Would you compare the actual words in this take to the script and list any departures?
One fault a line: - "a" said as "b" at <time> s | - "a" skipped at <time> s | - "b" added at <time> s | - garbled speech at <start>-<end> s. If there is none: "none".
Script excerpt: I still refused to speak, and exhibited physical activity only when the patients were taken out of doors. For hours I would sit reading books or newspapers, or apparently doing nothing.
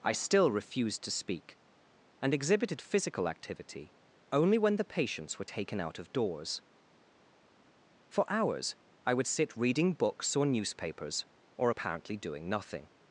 none